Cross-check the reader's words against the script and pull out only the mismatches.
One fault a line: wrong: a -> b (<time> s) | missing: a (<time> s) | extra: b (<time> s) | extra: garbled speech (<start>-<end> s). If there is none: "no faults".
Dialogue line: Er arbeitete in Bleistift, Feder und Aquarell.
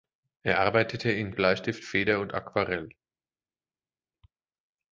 no faults